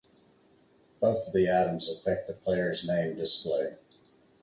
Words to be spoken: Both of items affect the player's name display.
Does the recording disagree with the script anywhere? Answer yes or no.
yes